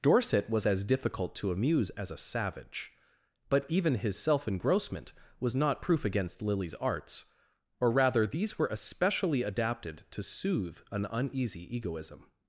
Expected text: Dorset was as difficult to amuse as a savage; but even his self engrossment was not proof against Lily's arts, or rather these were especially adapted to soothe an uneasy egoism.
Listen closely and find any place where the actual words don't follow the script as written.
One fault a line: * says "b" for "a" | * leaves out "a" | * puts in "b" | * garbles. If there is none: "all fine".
all fine